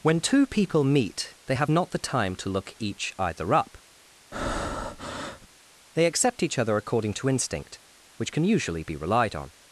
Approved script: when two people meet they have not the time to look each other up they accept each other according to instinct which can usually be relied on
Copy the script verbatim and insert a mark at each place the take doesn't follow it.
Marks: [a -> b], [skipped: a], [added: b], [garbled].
when two people meet they have not the time to look each [other -> either] up they accept each other according to instinct which can usually be relied on